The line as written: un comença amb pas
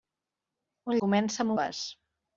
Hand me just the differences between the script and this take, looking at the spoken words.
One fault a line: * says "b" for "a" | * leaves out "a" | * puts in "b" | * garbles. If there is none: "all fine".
all fine